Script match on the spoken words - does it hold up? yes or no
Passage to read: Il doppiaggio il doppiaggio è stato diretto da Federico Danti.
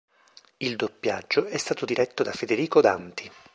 no